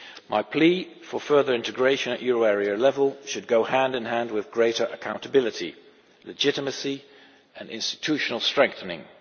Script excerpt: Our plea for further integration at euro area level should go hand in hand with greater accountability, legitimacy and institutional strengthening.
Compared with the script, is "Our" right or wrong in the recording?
wrong